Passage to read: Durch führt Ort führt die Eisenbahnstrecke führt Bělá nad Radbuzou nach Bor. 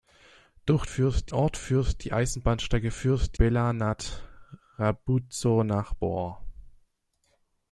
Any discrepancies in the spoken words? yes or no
no